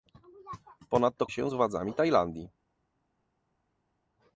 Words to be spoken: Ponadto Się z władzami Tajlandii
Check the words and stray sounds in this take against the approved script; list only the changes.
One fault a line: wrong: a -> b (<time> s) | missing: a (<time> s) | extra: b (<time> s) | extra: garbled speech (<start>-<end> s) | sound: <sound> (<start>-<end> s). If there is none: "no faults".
no faults